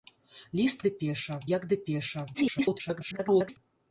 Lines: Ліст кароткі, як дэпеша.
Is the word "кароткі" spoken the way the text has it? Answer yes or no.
no